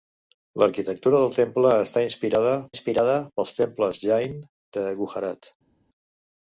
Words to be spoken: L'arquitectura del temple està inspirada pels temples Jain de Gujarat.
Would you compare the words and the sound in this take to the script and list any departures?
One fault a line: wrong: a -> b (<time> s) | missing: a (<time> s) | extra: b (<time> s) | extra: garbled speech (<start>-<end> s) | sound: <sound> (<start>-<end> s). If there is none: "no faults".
extra: inspirada (2.7 s)